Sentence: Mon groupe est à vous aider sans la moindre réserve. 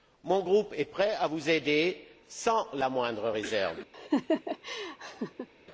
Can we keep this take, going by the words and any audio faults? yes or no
no